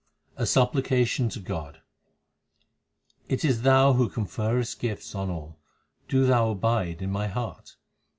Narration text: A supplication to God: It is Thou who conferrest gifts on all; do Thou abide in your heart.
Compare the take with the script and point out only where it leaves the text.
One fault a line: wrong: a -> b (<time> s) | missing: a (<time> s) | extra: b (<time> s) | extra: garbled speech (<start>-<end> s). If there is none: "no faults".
wrong: your -> my (7.1 s)